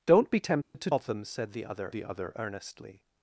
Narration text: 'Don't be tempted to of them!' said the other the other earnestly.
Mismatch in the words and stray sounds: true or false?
true